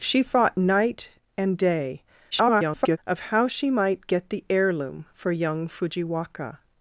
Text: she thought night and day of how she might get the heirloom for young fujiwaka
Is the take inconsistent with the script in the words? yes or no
yes